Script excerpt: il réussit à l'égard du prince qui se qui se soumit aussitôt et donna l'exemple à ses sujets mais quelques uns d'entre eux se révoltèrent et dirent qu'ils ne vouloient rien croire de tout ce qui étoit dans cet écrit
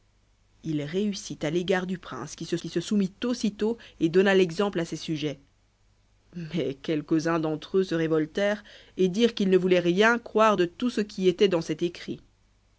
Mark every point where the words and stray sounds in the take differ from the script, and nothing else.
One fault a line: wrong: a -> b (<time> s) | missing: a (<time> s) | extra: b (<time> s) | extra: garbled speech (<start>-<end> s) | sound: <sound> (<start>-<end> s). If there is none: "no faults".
no faults